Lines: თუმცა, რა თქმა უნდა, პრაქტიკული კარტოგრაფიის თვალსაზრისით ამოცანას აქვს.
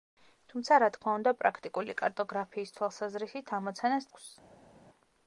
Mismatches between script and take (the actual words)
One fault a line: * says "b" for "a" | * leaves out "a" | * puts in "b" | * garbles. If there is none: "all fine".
all fine